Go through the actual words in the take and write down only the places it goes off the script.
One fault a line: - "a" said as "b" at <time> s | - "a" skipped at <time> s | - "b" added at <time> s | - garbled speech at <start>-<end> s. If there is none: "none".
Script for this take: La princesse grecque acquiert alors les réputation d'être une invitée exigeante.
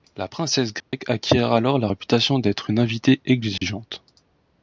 - "les" said as "la" at 1.8 s